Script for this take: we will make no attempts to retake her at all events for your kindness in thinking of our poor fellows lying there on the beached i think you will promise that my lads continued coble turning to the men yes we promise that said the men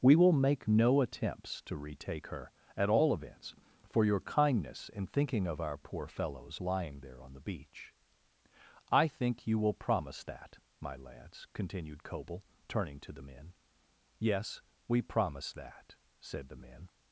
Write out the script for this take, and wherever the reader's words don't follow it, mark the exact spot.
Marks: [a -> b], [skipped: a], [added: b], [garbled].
we will make no attempts to retake her at all events for your kindness in thinking of our poor fellows lying there on the [beached -> beach] i think you will promise that my lads continued coble turning to the men yes we promise that said the men